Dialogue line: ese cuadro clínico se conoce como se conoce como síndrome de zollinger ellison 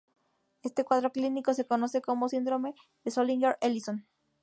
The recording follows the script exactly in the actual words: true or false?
false